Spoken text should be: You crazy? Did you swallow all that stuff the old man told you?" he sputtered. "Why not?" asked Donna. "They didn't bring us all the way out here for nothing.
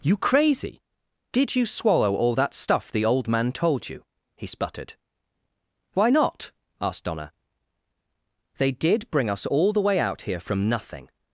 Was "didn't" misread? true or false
true